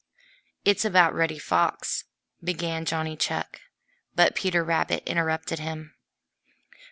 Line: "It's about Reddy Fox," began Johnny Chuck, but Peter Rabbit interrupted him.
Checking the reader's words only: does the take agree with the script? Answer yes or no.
yes